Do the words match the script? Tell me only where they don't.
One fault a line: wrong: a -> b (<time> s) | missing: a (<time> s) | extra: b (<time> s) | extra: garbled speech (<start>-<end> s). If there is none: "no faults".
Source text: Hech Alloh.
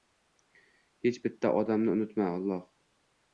extra: bitta odamni unutma (1.2 s)